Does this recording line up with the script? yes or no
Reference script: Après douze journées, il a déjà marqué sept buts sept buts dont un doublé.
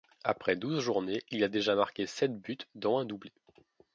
no